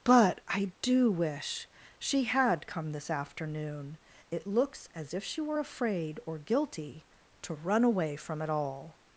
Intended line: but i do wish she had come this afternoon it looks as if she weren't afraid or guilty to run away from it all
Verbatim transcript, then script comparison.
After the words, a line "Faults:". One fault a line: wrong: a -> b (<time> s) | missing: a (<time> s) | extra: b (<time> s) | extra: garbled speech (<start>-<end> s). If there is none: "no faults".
but i do wish she had come this afternoon it looks as if she were afraid or guilty to run away from it all
Faults:
wrong: weren't -> were (5.4 s)